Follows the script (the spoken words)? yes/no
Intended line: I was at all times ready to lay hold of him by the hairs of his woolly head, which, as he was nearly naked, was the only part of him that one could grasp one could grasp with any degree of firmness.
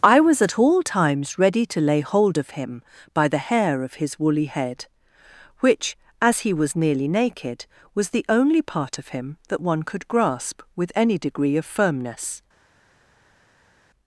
no